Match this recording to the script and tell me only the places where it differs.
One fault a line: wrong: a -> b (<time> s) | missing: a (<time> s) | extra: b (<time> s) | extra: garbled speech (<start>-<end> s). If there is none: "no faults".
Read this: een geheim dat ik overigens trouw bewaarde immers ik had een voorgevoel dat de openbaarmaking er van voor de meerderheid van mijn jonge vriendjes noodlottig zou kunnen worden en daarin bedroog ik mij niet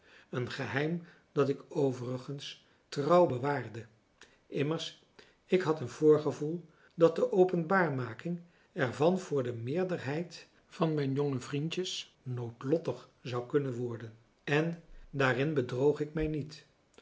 no faults